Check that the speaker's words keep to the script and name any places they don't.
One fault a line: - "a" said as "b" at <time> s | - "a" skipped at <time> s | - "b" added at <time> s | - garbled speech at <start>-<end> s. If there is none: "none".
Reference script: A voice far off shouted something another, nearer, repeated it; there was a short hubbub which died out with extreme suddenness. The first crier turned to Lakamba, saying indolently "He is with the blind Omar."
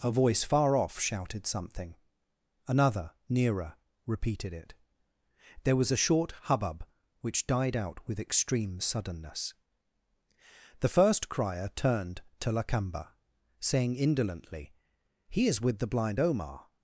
none